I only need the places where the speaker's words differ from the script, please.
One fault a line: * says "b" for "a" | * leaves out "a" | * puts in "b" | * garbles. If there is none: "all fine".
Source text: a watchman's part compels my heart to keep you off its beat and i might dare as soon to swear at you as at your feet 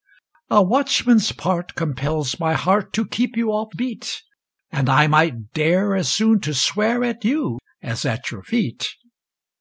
* leaves out "its"